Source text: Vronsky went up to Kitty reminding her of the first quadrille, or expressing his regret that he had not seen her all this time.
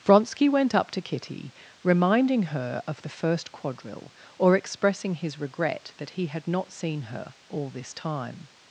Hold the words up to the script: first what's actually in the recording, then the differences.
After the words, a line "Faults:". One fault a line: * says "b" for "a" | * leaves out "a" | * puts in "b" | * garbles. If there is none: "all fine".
Vronsky went up to Kitty reminding her of the first quadrille, or expressing his regret that he had not seen her all this time.
Faults:
all fine